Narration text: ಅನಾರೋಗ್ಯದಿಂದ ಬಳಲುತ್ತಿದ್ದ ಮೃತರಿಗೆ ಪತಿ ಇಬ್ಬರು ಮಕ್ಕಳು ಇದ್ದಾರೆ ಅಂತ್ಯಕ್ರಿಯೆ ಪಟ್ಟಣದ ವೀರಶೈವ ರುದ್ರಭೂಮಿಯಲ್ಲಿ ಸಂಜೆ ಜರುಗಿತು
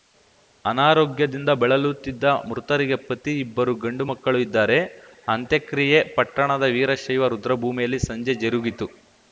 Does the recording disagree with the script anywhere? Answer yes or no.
yes